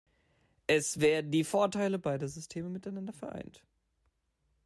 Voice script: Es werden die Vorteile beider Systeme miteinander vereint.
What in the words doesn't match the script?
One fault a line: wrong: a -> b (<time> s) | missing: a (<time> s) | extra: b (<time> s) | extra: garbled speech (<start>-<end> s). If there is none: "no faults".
no faults